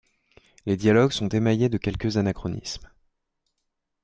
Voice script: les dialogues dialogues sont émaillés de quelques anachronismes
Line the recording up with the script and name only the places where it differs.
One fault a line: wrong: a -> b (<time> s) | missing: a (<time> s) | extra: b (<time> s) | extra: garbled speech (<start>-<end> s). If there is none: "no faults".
missing: dialogues (1.1 s)